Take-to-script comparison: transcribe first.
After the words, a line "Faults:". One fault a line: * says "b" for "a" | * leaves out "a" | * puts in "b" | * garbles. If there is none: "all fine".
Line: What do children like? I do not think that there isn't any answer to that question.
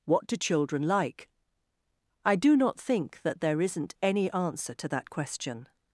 What do children like? I do not think that there isn't any answer to that question.
Faults:
all fine